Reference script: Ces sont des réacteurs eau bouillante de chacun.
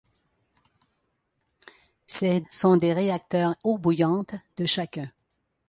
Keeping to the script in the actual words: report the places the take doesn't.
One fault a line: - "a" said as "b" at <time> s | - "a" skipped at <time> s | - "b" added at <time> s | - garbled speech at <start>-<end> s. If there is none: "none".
none